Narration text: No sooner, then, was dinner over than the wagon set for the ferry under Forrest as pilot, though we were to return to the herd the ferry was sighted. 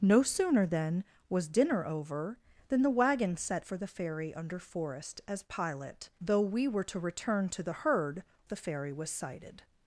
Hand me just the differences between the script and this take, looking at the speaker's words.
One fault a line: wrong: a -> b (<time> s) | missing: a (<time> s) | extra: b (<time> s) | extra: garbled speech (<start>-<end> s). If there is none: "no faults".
no faults